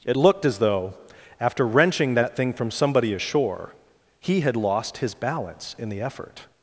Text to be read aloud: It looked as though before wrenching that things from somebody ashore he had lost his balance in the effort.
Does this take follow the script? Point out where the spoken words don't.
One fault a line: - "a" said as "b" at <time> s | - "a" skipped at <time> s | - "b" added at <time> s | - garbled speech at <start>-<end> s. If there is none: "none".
- "before" said as "after" at 1.4 s
- "things" said as "thing" at 2.4 s